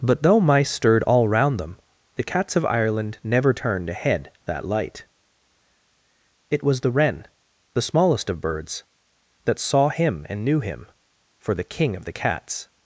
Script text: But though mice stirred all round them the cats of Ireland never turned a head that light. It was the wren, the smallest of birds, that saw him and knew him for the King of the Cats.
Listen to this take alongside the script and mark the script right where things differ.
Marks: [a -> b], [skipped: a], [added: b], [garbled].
But though mice stirred all round them the cats of Ireland never turned a head that light. It was the wren, the smallest of birds, that saw him and knew him for the King of the Cats.